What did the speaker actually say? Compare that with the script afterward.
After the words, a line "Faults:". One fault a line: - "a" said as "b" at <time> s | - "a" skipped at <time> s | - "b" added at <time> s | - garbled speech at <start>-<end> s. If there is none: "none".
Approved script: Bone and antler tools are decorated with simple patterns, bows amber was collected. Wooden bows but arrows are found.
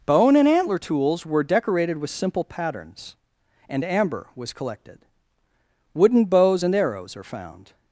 Bone and antler tools were decorated with simple patterns, and amber was collected. Wooden bows and arrows are found.
Faults:
- "are" said as "were" at 1.2 s
- "bows" said as "and" at 3.7 s
- "but" said as "and" at 6.6 s